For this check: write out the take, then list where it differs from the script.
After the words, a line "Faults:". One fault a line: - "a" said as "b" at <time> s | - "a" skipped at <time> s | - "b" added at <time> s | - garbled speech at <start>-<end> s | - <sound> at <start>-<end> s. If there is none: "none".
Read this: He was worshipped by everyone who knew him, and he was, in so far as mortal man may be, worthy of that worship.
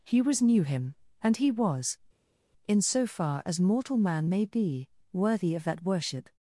He was knew him, and he was, in so far as mortal man may be, worthy of that worship.
Faults:
- "worshipped by everyone who" skipped at 0.4 s